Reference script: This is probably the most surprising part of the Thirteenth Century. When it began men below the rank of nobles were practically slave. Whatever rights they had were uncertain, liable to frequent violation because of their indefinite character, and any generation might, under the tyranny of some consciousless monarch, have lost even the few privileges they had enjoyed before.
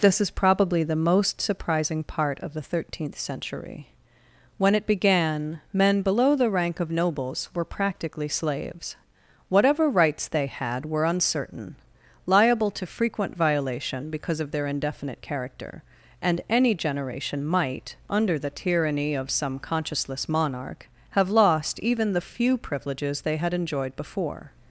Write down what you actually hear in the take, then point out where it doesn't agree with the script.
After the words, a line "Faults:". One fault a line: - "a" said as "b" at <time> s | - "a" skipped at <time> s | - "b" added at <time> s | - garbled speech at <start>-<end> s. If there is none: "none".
This is probably the most surprising part of the Thirteenth Century. When it began men below the rank of nobles were practically slaves. Whatever rights they had were uncertain, liable to frequent violation because of their indefinite character, and any generation might, under the tyranny of some consciousless monarch, have lost even the few privileges they had enjoyed before.
Faults:
- "slave" said as "slaves" at 8.3 s